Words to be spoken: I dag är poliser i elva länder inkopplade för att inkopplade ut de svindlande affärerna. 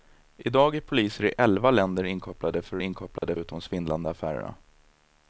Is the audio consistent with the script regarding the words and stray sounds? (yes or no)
no